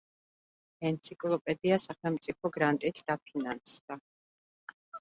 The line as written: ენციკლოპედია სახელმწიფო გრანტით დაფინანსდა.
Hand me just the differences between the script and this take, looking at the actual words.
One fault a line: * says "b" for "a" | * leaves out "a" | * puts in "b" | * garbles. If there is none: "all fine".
all fine